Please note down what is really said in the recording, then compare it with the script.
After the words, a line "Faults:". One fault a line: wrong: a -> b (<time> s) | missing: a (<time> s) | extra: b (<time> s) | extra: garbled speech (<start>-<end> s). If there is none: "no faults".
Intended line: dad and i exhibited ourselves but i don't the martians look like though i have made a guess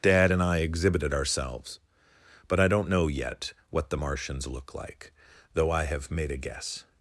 dad and i exhibited ourselves but i don't know yet what the martians look like though i have made a guess
Faults:
extra: know yet what (2.9 s)